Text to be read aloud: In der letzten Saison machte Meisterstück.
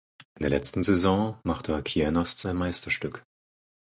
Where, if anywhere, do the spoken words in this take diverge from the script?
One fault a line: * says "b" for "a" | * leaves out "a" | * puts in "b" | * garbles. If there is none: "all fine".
* puts in "Kienast sein"